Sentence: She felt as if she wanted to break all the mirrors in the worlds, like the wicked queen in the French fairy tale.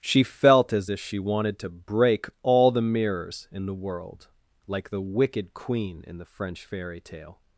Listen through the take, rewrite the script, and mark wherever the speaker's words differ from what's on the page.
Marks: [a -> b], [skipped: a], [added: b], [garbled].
She felt as if she wanted to break all the mirrors in the [worlds, -> world] like the wicked queen in the French fairy tale.